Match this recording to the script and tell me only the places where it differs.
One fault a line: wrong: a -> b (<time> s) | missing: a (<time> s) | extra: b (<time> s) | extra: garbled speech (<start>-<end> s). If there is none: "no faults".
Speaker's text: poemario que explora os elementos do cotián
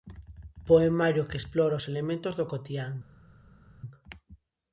no faults